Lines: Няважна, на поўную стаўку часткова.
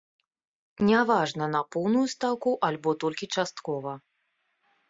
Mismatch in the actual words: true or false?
true